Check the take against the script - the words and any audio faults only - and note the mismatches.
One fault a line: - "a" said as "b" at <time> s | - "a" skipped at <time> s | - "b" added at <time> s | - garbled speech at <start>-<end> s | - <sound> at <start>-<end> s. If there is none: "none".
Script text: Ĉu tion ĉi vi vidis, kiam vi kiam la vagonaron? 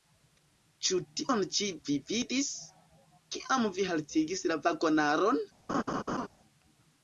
- "kiam" said as "haltigis" at 3.9 s
- laugh at 5.7-6.3 s